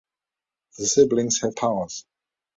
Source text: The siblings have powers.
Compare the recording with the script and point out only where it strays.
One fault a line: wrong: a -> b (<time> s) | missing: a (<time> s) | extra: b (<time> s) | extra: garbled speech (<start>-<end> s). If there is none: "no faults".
no faults